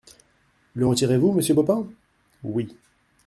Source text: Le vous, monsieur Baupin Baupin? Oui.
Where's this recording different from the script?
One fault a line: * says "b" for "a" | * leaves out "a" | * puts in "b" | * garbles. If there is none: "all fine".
* puts in "retirez"
* leaves out "Baupin"